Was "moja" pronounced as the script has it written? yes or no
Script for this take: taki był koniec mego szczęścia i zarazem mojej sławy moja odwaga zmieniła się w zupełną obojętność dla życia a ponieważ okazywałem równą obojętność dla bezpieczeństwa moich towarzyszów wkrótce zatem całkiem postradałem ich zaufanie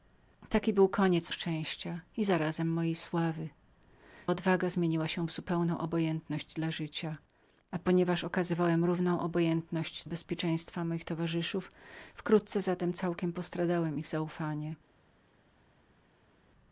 no